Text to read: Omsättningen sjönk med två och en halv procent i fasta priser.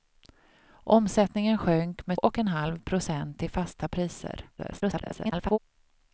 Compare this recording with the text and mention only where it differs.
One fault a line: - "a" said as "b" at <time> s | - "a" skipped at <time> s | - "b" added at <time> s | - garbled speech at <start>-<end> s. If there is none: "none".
- "två" skipped at 2.2 s
- garbled speech at 4.6-5.6 s